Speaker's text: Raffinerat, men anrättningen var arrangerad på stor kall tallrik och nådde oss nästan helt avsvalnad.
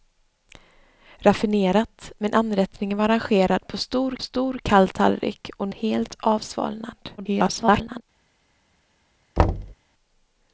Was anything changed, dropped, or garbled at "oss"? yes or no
yes